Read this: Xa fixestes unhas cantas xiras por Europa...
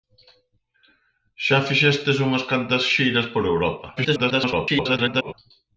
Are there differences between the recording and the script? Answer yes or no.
yes